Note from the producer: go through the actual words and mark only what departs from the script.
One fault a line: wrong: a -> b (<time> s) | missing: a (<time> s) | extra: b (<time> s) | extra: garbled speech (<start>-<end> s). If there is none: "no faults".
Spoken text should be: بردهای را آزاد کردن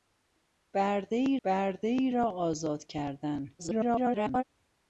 extra: بردهای (1.4 s)
extra: garbled speech (3.6-4.4 s)